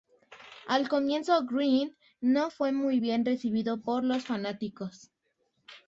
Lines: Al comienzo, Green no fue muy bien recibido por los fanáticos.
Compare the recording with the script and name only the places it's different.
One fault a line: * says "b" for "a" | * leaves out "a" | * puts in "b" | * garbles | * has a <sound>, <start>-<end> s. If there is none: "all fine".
all fine